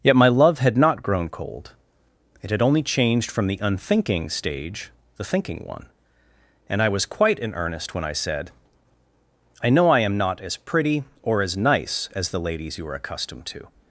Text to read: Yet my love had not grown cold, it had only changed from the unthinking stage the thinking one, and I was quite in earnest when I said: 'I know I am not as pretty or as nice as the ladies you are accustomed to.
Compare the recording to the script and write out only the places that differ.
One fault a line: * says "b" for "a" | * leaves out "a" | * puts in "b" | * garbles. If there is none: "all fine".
all fine